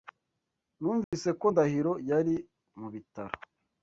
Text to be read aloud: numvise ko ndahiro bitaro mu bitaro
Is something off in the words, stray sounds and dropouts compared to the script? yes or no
yes